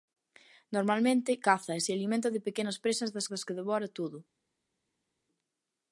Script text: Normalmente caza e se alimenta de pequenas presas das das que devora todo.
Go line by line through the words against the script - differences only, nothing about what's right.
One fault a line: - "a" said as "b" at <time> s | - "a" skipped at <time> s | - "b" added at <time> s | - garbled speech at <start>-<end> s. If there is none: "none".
none